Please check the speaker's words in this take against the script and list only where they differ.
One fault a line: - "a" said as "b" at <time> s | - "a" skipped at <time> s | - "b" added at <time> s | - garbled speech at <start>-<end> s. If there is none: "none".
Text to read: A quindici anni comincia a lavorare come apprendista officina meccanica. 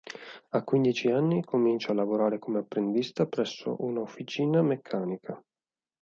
- "presso una" added at 3.3 s